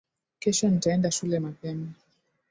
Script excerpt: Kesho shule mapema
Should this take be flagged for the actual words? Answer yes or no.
yes